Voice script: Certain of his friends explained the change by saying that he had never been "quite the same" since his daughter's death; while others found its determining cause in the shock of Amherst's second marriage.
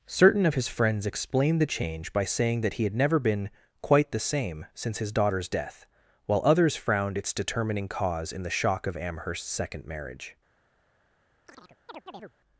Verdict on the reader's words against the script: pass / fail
fail